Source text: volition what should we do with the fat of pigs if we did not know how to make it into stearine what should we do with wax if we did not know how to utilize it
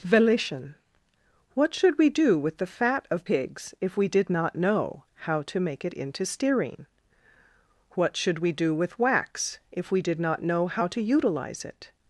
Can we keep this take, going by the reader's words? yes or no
yes